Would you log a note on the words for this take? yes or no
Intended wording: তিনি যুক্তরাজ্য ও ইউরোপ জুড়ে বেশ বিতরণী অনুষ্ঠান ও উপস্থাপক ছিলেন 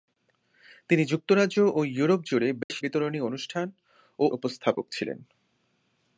no